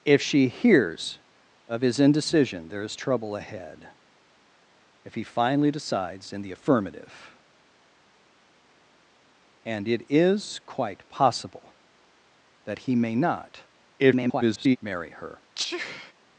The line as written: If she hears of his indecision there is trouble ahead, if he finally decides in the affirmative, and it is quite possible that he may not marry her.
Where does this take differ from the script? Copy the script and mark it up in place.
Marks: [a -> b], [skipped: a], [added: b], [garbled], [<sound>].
If she hears of his indecision there is trouble ahead, if he finally decides in the affirmative, and it is quite possible that he may not [garbled] marry her. [sneeze]